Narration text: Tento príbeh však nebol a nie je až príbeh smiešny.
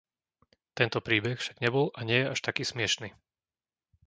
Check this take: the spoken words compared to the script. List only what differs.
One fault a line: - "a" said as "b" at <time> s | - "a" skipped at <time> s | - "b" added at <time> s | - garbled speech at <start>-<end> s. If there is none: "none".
- "príbeh" said as "taký" at 2.4 s